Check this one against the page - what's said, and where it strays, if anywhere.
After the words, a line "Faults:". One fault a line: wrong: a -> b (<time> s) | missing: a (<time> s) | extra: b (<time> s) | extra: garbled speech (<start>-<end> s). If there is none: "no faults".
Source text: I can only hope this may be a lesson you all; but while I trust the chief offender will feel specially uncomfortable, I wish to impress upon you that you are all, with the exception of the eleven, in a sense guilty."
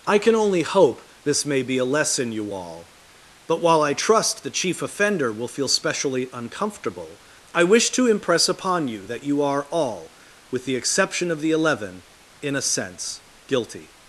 I can only hope this may be a lesson you all; but while I trust the chief offender will feel specially uncomfortable, I wish to impress upon you that you are all, with the exception of the eleven, in a sense guilty."
Faults:
no faults